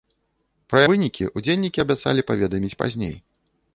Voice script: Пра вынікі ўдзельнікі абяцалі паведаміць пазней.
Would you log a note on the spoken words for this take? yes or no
no